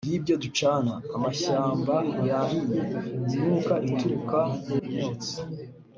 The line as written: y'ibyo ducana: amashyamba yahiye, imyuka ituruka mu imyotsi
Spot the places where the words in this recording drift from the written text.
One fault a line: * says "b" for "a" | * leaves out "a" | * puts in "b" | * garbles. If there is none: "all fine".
all fine